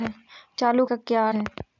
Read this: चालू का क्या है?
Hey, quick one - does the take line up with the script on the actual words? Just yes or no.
yes